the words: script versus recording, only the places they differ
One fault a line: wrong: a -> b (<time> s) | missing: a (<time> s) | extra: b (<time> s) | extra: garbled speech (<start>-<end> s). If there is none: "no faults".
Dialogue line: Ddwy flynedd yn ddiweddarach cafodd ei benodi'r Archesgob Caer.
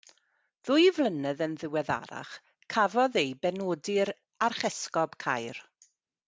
no faults